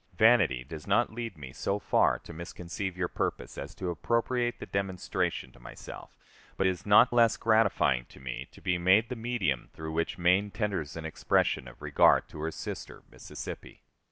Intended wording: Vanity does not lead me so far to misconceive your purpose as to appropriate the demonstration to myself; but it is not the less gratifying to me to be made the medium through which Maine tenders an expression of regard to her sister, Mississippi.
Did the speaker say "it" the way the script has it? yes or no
no